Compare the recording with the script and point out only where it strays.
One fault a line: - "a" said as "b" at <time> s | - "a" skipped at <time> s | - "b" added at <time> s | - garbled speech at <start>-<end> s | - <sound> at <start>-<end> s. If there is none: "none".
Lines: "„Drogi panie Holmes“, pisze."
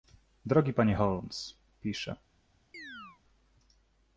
- chirp at 2.7-3.2 s